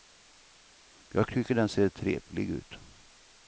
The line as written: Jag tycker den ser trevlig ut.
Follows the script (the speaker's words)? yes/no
yes